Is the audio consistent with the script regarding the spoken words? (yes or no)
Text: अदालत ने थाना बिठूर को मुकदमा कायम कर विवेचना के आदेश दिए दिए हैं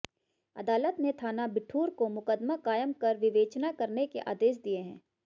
no